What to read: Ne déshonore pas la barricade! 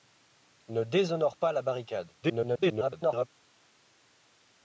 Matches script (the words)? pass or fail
fail